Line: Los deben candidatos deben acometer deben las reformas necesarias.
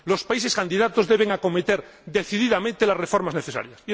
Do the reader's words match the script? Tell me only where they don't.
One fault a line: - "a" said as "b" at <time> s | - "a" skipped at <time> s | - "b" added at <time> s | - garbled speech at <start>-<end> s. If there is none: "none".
- "deben" said as "países" at 0.2 s
- "deben" said as "decididamente" at 2.0 s